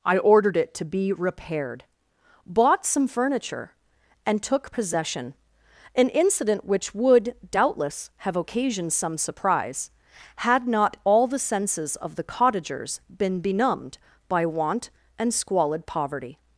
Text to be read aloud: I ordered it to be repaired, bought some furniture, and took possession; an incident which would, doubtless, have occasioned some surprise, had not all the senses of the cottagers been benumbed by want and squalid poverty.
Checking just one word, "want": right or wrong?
right